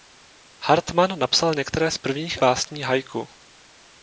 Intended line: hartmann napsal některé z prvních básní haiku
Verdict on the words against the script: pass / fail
pass